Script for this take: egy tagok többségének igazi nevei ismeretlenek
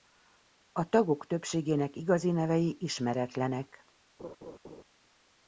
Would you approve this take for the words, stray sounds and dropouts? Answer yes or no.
no